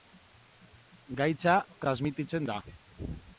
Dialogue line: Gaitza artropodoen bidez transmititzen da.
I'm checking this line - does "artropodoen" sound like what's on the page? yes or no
no